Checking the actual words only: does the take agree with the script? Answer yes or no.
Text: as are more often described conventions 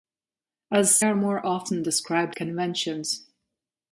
yes